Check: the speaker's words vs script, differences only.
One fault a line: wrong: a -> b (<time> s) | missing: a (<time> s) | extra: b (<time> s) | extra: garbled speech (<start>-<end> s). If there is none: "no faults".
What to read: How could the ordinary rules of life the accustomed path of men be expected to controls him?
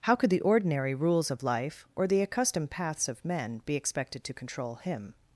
extra: or (1.9 s)
wrong: path -> paths (2.7 s)
wrong: controls -> control (4.3 s)